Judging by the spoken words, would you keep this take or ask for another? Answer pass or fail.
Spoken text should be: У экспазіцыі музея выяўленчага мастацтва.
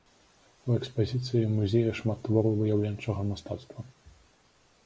fail